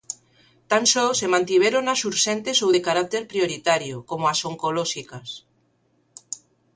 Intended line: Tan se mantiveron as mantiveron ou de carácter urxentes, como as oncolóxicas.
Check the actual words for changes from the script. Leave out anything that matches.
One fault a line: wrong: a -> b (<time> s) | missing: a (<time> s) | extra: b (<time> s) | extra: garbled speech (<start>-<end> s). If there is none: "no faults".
extra: só (0.9 s)
wrong: mantiveron -> urxentes (2.1 s)
wrong: urxentes -> prioritario (3.3 s)